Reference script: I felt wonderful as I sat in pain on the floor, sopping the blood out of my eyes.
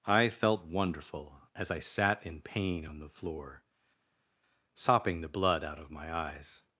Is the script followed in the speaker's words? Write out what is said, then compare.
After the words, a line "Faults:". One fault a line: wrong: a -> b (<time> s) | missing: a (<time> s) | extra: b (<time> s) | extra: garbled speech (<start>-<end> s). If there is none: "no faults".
I felt wonderful as I sat in pain on the floor, sopping the blood out of my eyes.
Faults:
no faults